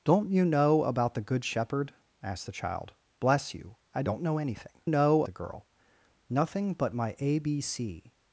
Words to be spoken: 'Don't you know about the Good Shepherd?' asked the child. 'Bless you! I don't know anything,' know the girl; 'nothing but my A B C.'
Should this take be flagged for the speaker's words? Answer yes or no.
no